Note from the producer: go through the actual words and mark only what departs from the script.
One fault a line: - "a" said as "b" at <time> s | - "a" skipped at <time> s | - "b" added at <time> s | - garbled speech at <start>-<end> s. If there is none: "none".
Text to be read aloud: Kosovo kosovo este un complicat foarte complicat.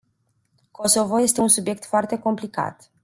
- "kosovo" skipped at 1.2 s
- "complicat" said as "subiect" at 1.5 s